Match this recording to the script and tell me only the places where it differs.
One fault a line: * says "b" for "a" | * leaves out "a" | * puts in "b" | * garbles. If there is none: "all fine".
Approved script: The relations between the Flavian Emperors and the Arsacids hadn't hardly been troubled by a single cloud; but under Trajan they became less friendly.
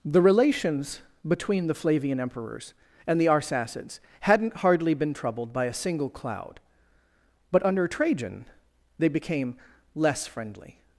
all fine